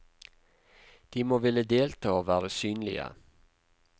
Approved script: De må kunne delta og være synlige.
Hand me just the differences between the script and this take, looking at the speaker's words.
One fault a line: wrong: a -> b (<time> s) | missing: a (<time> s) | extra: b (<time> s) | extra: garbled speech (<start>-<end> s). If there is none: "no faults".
wrong: kunne -> ville (1.4 s)